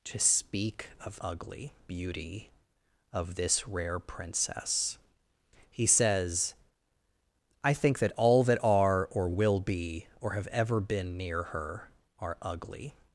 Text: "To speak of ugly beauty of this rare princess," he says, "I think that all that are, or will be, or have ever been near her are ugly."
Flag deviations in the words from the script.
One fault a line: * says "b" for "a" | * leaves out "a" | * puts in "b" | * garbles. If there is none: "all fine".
all fine